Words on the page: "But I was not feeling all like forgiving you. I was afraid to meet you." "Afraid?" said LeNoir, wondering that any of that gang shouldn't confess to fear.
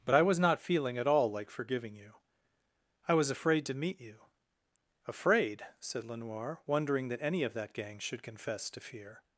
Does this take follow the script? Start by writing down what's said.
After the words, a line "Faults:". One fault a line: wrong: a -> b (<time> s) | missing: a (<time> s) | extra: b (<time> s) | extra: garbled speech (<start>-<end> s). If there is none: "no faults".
"But I was not feeling at all like forgiving you. I was afraid to meet you." "Afraid?" said LeNoir, wondering that any of that gang should confess to fear.
Faults:
extra: at (1.0 s)
wrong: shouldn't -> should (8.0 s)